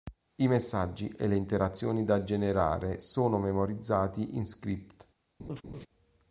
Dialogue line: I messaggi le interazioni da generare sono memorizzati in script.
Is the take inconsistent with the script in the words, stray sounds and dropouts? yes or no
yes